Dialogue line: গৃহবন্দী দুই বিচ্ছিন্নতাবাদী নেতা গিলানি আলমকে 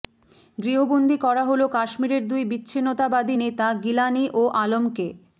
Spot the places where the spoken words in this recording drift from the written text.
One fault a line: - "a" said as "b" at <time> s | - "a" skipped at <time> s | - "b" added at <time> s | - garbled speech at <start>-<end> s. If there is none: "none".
- "করা হল কাশ্মীরের" added at 1.2 s
- "ও" added at 4.3 s